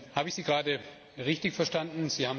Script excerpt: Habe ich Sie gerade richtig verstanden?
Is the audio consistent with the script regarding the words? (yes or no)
yes